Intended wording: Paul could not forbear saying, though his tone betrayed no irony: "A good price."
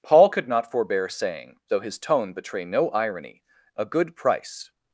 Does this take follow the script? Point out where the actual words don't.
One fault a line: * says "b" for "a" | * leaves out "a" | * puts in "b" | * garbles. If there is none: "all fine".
* says "betray" for "betrayed"